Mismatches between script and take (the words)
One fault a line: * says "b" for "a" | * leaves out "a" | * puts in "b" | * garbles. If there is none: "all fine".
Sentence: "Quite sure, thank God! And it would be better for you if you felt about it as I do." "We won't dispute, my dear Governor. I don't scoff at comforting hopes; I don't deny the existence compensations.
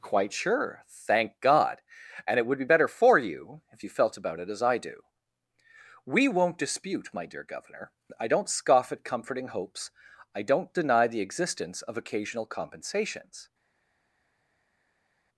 * puts in "of occasional"